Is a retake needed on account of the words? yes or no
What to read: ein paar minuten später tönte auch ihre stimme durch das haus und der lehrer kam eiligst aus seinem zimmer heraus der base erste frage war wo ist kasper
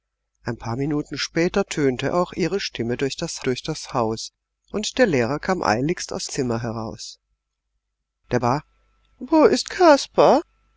yes